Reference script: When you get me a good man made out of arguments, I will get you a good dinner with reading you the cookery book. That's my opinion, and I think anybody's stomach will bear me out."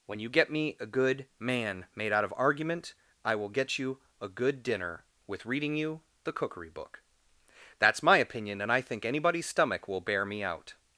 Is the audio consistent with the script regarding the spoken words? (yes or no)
no